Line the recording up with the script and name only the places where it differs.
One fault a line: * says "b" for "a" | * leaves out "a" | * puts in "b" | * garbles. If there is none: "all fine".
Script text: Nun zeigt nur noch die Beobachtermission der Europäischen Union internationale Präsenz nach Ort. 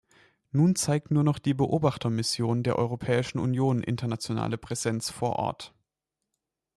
* says "vor" for "nach"